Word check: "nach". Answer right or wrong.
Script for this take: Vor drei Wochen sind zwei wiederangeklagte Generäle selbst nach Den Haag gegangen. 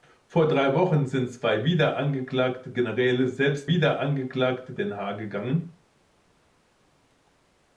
wrong